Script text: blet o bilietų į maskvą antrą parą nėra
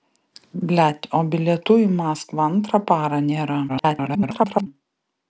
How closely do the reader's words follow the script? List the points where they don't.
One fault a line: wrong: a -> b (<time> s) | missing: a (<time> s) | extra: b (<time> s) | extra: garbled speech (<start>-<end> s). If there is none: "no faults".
extra: garbled speech (3.7-4.7 s)